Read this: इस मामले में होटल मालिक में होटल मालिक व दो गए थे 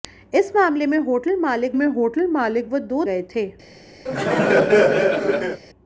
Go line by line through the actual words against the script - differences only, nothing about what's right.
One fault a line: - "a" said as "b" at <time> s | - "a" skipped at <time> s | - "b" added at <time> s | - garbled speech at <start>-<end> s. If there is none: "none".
none